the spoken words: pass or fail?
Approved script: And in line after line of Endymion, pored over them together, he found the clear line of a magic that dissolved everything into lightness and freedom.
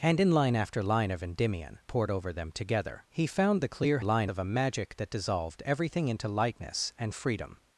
pass